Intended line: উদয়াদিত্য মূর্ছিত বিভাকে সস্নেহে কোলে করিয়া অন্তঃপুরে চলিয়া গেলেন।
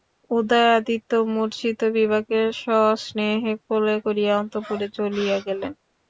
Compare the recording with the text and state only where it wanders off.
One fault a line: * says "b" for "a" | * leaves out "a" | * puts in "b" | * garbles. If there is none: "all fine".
all fine